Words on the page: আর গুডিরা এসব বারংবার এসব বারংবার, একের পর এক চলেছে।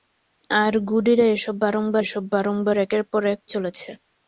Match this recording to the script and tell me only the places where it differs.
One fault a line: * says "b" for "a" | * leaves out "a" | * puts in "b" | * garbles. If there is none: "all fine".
all fine